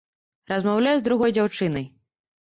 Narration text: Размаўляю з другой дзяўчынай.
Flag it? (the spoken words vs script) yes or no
no